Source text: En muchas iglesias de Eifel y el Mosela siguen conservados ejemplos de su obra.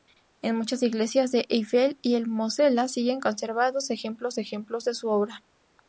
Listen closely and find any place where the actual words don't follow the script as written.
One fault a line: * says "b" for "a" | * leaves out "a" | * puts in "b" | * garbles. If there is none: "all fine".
* puts in "ejemplos"